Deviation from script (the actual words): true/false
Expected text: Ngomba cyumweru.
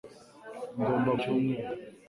false